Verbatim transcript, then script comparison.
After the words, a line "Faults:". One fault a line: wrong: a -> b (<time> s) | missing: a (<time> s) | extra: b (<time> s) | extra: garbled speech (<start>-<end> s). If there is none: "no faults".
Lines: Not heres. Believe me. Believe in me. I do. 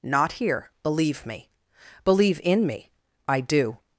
Not here. Believe me. Believe in me. I do.
Faults:
wrong: heres -> here (0.3 s)